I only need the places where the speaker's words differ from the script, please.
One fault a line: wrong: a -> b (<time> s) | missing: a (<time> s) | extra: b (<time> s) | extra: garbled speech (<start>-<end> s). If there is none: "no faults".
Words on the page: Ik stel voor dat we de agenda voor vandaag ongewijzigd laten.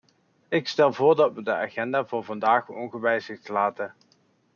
no faults